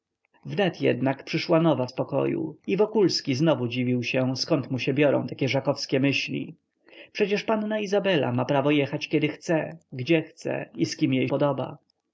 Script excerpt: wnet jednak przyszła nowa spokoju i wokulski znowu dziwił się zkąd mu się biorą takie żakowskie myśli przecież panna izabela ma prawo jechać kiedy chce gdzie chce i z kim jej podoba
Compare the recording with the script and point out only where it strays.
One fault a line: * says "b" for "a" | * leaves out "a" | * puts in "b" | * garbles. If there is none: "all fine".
all fine